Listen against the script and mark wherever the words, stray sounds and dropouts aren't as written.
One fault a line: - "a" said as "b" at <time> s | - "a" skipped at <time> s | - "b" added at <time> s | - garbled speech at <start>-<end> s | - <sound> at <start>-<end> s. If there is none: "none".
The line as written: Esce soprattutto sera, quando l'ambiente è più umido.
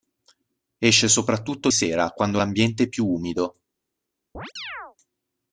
- chirp at 4.3-5.0 s